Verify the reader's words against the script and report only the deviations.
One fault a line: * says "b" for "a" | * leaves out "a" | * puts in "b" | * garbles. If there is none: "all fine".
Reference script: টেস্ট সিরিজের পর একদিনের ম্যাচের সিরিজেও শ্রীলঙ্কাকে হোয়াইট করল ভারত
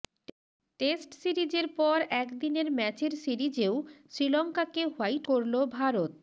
all fine